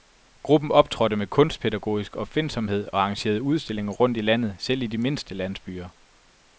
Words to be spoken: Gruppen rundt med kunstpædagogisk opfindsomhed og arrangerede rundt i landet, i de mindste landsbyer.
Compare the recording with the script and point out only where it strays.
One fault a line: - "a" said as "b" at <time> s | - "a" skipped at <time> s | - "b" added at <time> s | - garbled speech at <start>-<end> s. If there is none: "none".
- "rundt" said as "optrådte" at 0.7 s
- "udstillinger" added at 3.4 s
- "selv" added at 4.6 s